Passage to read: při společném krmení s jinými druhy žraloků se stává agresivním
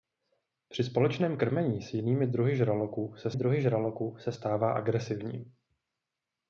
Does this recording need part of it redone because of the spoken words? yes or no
yes